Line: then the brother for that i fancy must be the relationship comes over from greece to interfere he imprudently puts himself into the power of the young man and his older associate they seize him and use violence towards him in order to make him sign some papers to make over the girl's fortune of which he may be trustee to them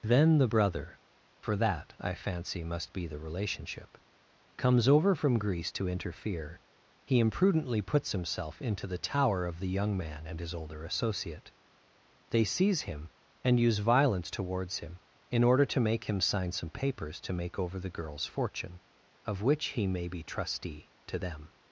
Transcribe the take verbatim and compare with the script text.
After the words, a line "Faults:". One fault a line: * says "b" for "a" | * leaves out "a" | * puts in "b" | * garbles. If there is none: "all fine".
then the brother for that i fancy must be the relationship comes over from greece to interfere he imprudently puts himself into the tower of the young man and his older associate they seize him and use violence towards him in order to make him sign some papers to make over the girl's fortune of which he may be trustee to them
Faults:
* says "tower" for "power"